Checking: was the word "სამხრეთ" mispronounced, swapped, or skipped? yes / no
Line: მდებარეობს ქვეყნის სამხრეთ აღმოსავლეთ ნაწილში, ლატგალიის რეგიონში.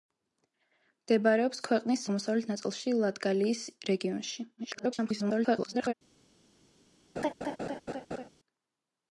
yes